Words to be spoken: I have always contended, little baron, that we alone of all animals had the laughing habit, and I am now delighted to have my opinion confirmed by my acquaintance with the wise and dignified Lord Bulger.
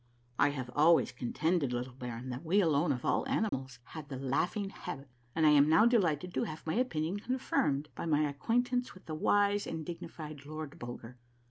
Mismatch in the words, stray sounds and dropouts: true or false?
true